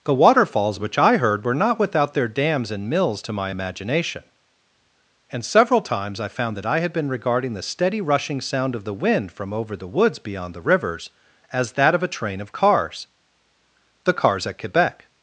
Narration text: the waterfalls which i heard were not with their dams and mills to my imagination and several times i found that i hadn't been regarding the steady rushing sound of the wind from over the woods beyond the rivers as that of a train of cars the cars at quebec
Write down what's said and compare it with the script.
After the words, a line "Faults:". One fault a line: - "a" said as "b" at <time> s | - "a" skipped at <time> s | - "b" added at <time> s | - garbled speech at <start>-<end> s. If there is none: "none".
the waterfalls which i heard were not without their dams and mills to my imagination and several times i found that i had been regarding the steady rushing sound of the wind from over the woods beyond the rivers as that of a train of cars the cars at quebec
Faults:
- "with" said as "without" at 1.8 s
- "hadn't" said as "had" at 6.8 s